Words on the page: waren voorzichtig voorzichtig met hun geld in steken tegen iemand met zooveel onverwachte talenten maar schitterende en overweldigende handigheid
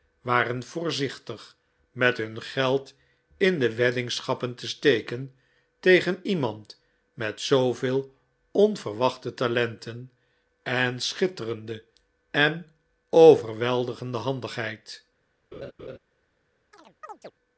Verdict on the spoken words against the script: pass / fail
fail